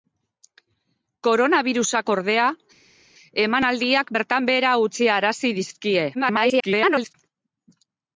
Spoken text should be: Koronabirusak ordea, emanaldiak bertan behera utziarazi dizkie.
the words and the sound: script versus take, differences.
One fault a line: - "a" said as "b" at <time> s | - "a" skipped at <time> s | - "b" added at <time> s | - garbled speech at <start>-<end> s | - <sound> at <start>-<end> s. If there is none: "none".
- garbled speech at 6.1-7.1 s